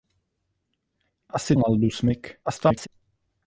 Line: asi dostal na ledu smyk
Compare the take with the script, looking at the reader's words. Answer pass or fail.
fail